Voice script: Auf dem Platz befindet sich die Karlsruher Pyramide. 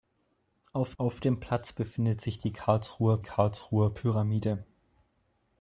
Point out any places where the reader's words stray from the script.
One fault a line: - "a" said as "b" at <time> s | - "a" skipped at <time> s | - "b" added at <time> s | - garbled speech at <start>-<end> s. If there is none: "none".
- "auf" added at 1.0 s
- "Karlsruher" added at 3.2 s